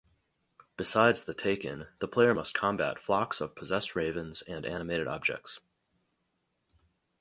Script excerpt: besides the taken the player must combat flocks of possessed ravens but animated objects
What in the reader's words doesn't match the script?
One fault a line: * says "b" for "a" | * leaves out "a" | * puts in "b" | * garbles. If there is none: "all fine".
* says "and" for "but"